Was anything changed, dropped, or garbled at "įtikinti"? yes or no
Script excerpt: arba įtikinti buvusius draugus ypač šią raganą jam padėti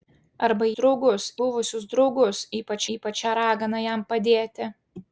yes